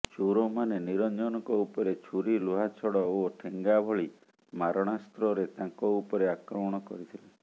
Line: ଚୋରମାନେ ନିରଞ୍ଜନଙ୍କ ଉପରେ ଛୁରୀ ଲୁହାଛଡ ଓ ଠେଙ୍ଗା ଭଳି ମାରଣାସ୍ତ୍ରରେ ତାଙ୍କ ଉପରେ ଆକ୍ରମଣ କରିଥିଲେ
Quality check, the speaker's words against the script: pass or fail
pass